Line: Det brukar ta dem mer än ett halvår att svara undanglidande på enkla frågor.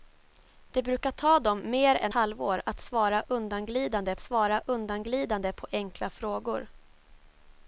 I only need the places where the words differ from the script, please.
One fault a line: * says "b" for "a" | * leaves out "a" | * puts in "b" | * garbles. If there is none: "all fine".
* leaves out "ett"
* puts in "svara undanglidande"